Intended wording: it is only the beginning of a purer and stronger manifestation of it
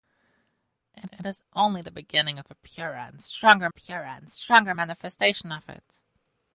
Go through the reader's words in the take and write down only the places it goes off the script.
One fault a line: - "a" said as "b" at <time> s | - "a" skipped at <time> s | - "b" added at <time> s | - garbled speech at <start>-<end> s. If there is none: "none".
- "it" added at 1.1 s
- "purer and stronger" added at 3.7 s